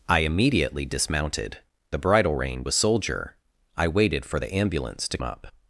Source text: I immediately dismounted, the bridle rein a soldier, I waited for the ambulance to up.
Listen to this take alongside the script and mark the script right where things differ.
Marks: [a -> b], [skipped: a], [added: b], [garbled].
I immediately dismounted, the bridle rein a soldier, I waited for the ambulance to up.